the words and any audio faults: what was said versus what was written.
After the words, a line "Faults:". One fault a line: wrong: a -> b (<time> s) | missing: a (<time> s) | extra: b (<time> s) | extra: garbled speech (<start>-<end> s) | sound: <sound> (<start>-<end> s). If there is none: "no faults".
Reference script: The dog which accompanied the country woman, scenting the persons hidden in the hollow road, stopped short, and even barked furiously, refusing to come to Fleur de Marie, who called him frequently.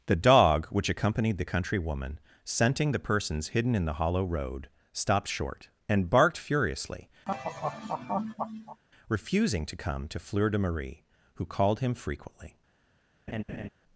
The dog which accompanied the country woman, scenting the persons hidden in the hollow road, stopped short, and barked furiously, refusing to come to Fleur de Marie, who called him frequently.
Faults:
missing: even (6.1 s)
sound: laugh (7.3-8.8 s)
sound: laugh (13.3-13.7 s)